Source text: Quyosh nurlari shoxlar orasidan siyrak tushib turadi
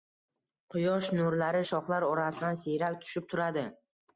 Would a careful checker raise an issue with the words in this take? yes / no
no